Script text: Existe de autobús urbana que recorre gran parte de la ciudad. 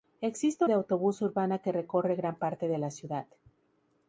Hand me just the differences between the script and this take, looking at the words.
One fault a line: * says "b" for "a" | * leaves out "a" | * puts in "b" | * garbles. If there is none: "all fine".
all fine